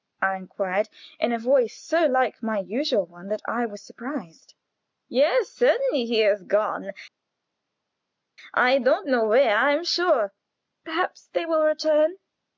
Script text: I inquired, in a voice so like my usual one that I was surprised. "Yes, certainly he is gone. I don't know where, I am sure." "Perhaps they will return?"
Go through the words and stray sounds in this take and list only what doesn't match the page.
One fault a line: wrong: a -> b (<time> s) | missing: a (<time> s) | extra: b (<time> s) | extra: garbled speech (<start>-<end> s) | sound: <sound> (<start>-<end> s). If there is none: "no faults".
no faults